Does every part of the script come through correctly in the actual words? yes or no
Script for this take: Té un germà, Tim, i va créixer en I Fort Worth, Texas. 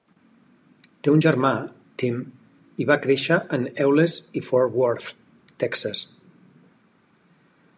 no